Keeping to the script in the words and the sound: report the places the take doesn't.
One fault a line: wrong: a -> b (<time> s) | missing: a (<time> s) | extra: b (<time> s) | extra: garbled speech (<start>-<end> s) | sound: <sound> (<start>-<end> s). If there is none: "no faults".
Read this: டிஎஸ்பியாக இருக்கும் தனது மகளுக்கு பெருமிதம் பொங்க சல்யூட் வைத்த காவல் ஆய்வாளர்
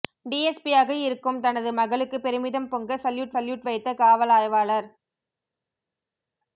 extra: சல்யூட் (3.3 s)